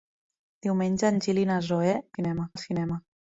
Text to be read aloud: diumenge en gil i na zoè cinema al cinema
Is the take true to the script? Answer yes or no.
yes